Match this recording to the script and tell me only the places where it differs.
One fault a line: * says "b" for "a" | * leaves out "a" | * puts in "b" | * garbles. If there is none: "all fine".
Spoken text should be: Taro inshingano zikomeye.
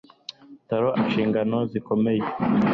all fine